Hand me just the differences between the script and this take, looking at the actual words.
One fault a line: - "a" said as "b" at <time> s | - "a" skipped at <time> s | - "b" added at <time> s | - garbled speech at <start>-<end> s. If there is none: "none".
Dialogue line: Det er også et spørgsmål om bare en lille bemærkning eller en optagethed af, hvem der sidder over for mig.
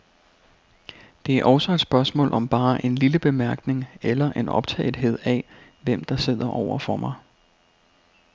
none